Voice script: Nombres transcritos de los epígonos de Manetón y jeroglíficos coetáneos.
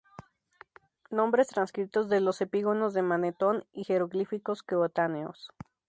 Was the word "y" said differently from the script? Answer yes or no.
no